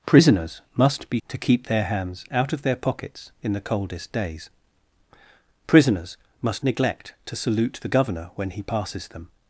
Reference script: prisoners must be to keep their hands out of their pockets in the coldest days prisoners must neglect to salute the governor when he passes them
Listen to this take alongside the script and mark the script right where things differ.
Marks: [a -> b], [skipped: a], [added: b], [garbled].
prisoners must be to keep their hands out of their pockets in the coldest days prisoners must neglect to salute the governor when he passes them